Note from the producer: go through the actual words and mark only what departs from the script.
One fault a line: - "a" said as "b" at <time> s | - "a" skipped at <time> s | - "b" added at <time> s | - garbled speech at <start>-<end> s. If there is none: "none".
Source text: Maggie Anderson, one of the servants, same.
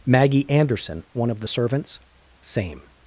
none